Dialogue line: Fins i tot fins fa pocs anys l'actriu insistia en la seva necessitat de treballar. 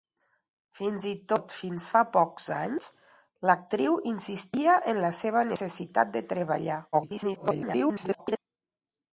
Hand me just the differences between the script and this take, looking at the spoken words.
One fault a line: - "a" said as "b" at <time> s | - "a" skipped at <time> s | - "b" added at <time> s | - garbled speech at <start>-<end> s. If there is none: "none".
- garbled speech at 6.9-8.4 s